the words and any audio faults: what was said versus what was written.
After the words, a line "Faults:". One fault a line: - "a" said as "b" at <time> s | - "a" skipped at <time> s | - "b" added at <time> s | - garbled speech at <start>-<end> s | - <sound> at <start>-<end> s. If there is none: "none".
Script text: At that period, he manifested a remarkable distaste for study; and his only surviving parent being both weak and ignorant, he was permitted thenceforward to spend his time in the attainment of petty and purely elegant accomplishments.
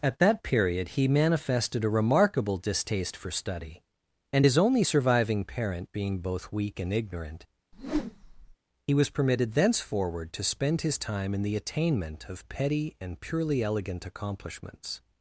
At that period, he manifested a remarkable distaste for study; and his only surviving parent being both weak and ignorant, he was permitted thenceforward to spend his time in the attainment of petty and purely elegant accomplishments.
Faults:
- whoosh at 7.7-8.6 s